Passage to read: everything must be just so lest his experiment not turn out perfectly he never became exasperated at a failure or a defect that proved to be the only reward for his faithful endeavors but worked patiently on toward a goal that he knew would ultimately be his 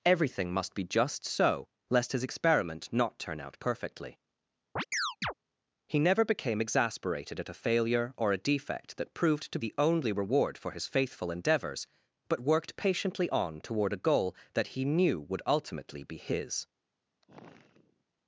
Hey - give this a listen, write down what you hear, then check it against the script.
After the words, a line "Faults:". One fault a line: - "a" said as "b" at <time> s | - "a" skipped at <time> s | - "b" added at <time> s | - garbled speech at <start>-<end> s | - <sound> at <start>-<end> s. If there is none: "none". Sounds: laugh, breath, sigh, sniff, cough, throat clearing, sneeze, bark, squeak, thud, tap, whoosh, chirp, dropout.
everything must be just so lest his experiment not turn out perfectly he never became exasperated at a failure or a defect that proved to the only reward for his faithful endeavors but worked patiently on toward a goal that he knew would ultimately be his
Faults:
- chirp at 4.8-5.3 s
- "be" skipped at 9.6 s
- sigh at 17.2-18.0 s